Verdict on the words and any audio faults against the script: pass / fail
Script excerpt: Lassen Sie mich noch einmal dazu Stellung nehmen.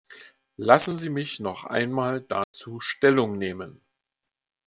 fail